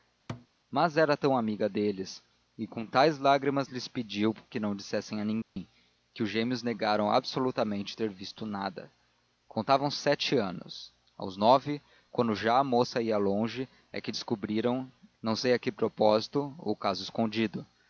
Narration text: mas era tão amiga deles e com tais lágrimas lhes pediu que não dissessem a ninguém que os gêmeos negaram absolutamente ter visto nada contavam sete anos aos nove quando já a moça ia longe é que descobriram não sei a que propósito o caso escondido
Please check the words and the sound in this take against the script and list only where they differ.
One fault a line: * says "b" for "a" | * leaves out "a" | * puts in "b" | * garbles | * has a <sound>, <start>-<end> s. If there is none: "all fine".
* has a thud, 0.3-0.5 s
* has a dropout, 5.4-5.6 s